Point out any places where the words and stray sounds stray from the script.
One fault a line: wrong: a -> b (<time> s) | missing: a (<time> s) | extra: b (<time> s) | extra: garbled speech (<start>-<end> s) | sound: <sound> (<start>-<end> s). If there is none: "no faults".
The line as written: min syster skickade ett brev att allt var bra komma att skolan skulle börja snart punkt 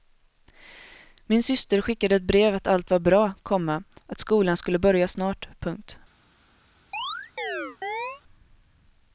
sound: chirp (6.9-8.2 s)